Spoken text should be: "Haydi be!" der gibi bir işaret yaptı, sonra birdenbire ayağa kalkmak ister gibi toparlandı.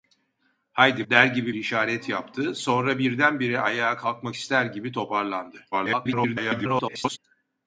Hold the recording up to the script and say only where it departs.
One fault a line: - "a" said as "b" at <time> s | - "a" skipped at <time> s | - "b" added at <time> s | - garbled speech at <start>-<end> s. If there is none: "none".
- "be" skipped at 1.1 s
- "bir" skipped at 1.6 s
- garbled speech at 5.7-7.2 s